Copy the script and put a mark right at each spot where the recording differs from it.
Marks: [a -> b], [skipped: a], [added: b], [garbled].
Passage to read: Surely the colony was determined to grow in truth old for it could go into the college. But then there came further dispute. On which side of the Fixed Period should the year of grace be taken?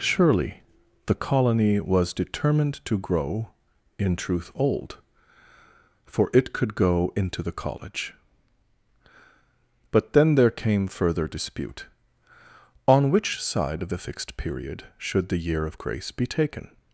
Surely the colony was determined to grow in truth old for it could go into the college. But then there came further dispute. On which side of the Fixed Period should the year of grace be taken?